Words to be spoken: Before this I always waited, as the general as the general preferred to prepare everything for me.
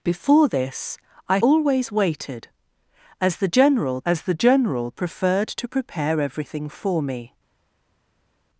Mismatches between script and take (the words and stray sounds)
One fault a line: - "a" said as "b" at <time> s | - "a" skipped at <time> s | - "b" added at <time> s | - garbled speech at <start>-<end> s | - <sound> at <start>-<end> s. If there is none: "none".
none